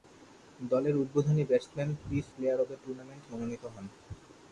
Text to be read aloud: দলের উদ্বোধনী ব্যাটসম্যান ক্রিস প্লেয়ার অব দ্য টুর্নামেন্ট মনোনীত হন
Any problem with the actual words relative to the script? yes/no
no